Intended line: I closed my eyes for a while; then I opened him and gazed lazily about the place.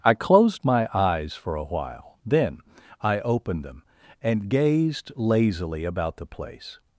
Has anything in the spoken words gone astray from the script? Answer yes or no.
yes